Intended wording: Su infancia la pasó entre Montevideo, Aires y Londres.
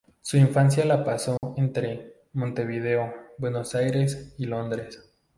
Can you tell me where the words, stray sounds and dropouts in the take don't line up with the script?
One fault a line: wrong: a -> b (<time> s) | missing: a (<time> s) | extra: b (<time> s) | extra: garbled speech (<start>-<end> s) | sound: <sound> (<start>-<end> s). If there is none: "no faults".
sound: dropout (1.4-1.4 s)
extra: Buenos (3.4 s)